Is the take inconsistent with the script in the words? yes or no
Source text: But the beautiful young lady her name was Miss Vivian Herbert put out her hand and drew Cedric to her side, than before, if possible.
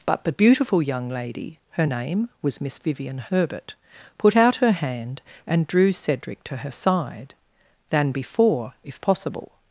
no